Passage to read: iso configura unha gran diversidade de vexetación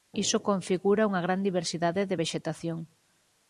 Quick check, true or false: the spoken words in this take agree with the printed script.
true